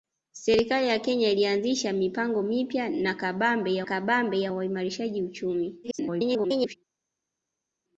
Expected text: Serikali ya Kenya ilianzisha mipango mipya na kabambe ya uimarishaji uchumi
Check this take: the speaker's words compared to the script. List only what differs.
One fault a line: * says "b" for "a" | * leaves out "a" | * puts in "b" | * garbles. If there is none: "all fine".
* puts in "kabambe ya"
* garbles